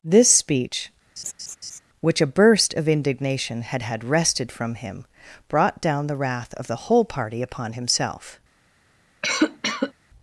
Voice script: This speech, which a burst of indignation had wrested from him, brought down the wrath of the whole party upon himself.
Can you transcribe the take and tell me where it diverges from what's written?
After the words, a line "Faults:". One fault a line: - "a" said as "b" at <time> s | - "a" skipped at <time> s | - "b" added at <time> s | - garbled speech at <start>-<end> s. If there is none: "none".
This speech, which a burst of indignation had had wrested from him, brought down the wrath of the whole party upon himself.
Faults:
- "had" added at 3.8 s